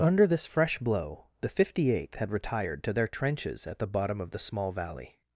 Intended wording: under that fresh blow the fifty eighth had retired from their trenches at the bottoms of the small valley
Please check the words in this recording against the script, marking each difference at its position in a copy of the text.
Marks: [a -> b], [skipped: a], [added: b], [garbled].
under [that -> this] fresh blow the fifty eighth had retired [from -> to] their trenches at the [bottoms -> bottom] of the small valley